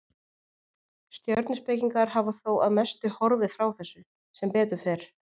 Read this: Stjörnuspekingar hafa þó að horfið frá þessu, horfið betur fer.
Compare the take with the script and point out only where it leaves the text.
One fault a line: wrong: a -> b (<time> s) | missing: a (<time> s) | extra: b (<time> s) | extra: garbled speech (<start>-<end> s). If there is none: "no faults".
extra: mestu (2.8 s)
wrong: horfið -> sem (4.4 s)